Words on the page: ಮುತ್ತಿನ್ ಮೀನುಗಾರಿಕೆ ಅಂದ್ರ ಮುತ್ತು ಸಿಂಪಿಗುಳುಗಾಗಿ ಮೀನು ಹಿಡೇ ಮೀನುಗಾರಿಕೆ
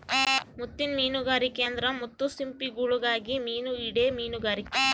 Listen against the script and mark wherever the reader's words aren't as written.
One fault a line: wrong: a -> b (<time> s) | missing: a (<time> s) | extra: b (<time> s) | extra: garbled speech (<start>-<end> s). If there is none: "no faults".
no faults